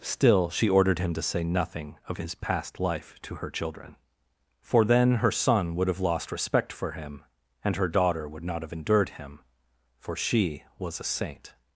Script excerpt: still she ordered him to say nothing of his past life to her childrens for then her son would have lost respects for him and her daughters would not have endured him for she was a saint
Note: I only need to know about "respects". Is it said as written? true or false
false